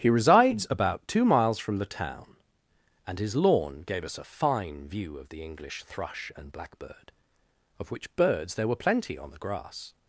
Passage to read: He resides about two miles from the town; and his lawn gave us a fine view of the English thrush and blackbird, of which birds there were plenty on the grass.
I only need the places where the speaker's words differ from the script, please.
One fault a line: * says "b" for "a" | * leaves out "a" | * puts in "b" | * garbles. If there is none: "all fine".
all fine